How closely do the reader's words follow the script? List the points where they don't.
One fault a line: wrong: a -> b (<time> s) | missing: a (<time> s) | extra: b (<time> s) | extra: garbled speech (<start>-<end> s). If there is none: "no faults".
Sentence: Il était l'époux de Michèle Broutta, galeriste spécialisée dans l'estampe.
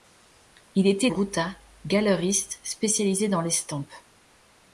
missing: l'époux de Michèle (1.1 s)